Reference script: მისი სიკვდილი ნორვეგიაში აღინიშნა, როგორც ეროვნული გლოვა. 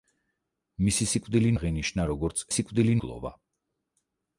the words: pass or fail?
fail